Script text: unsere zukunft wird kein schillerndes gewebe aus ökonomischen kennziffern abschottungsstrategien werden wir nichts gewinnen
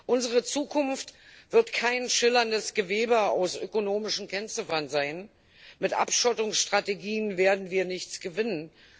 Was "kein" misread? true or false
false